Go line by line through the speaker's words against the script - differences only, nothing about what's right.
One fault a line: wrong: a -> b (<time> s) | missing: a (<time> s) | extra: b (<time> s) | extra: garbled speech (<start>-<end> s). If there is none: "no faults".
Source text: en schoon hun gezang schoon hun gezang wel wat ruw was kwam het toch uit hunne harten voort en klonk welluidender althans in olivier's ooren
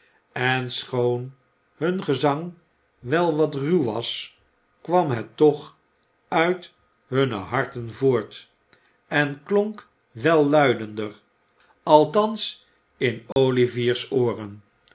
missing: schoon hun gezang (2.5 s)